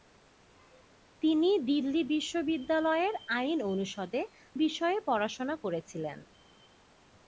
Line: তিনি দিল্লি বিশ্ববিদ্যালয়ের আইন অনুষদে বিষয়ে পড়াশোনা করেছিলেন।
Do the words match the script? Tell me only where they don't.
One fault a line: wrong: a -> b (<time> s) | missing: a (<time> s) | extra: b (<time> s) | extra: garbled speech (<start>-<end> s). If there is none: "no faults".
no faults